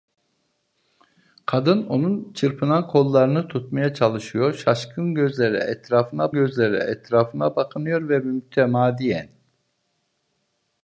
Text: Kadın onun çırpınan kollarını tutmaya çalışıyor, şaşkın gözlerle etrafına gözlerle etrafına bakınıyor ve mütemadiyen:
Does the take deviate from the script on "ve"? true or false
false